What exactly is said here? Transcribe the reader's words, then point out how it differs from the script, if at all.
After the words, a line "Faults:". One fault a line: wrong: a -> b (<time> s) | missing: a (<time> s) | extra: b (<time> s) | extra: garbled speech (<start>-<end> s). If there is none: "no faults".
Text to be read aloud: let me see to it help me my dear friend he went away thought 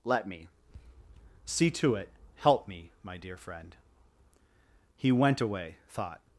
let me see to it help me my dear friend he went away thought
Faults:
no faults